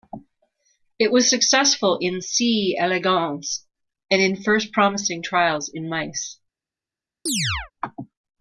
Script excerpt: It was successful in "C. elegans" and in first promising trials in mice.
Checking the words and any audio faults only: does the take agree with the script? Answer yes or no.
no